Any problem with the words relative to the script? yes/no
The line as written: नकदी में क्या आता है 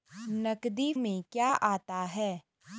no